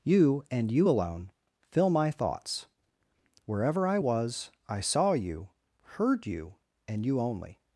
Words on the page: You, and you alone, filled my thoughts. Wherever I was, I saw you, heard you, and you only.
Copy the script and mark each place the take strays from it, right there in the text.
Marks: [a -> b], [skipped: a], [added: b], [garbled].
You, and you alone, [filled -> fill] my thoughts. Wherever I was, I saw you, heard you, and you only.